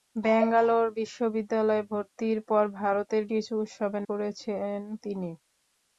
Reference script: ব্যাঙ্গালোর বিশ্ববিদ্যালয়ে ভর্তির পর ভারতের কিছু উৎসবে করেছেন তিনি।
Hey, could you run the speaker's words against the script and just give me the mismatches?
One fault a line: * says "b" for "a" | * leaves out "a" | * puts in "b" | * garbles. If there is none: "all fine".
all fine